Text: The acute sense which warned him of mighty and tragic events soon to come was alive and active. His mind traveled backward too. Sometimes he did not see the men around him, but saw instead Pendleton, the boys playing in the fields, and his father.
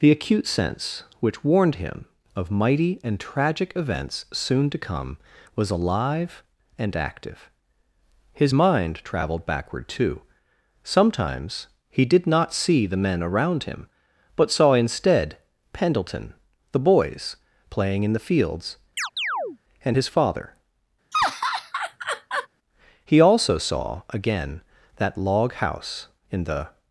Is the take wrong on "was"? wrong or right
right